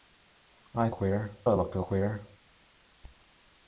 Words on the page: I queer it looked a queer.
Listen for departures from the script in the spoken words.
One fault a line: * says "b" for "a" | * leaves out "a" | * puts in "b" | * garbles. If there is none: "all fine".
all fine